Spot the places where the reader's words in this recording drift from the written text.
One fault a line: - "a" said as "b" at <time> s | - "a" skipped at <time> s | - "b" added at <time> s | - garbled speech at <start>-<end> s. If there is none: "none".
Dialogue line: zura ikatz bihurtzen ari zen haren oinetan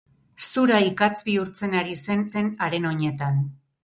- "zen" added at 2.3 s